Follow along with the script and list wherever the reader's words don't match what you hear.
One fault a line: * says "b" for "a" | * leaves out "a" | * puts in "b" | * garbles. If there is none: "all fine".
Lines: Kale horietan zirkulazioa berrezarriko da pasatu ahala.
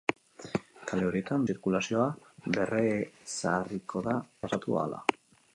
all fine